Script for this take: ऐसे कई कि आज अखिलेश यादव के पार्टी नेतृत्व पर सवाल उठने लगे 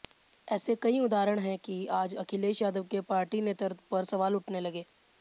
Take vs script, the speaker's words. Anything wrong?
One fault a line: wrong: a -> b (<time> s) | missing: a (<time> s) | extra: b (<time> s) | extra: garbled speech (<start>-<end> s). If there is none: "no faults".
extra: उदाहरण हैं (1.0 s)